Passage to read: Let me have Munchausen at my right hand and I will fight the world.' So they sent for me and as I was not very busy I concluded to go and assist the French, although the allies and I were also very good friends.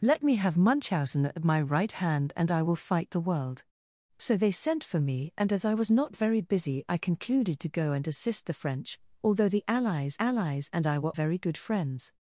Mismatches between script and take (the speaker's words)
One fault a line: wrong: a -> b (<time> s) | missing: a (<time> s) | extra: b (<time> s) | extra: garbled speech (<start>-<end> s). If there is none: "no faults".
extra: allies (10.2 s)
missing: also (11.1 s)